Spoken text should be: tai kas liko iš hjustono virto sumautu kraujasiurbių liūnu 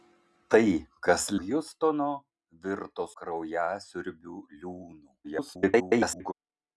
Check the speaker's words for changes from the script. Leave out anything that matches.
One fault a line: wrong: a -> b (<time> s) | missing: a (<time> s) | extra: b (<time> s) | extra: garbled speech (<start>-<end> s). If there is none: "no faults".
missing: liko iš (1.2 s)
missing: sumautu (3.1 s)
extra: garbled speech (5.2-6.3 s)